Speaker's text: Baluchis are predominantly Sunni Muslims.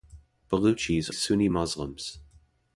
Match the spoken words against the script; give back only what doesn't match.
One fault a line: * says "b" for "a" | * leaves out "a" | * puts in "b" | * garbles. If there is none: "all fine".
* leaves out "are predominantly"